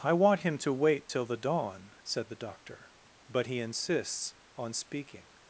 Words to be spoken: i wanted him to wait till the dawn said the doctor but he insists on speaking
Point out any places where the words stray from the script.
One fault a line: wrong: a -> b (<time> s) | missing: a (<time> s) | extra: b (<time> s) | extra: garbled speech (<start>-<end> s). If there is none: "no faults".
wrong: wanted -> want (0.1 s)